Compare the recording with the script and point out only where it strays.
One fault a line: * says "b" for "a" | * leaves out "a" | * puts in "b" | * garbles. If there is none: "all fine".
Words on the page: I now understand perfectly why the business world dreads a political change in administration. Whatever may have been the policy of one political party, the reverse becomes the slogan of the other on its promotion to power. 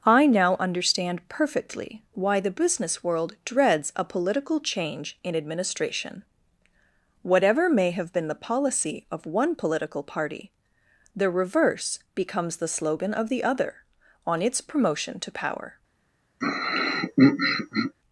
all fine